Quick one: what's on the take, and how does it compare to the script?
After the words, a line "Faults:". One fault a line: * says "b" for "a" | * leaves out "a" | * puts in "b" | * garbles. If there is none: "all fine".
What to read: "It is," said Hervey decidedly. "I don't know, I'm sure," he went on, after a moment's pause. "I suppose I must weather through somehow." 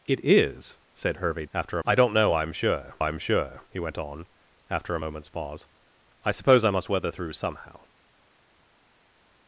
"It is," said Hervey after. "I don't know, I'm sure I'm sure," he went on, after a moment's pause. "I suppose I must weather through somehow."
Faults:
* says "after" for "decidedly"
* puts in "I'm sure"